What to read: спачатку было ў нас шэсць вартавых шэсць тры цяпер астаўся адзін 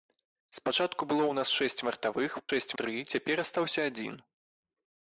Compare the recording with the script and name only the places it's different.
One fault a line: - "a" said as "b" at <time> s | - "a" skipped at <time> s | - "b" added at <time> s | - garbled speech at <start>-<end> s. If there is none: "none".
none